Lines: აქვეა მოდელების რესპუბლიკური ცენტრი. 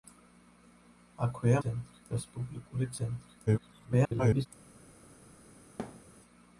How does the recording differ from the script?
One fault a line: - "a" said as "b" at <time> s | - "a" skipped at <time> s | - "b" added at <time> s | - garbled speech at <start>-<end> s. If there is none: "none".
- "მოდელების" said as "ცენტრი" at 1.6 s
- garbled speech at 3.5-4.5 s